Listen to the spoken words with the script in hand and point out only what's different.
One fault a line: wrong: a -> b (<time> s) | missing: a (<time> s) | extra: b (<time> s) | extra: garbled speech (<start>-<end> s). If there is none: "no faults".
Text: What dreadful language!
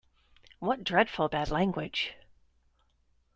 extra: bad (1.3 s)